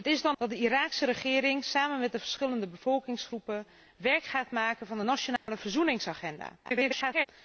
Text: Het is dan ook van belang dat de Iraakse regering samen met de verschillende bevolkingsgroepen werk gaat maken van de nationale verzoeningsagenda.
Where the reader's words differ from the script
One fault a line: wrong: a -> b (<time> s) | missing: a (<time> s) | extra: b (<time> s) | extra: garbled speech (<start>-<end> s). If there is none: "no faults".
missing: ook van belang (0.4 s)
extra: garbled speech (6.6-7.3 s)